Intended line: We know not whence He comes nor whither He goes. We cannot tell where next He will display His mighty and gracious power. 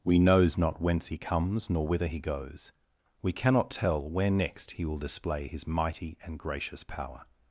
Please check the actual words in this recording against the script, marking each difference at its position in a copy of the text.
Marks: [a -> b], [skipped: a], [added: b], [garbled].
We [know -> knows] not whence He comes nor whither He goes. We cannot tell where next He will display His mighty and gracious power.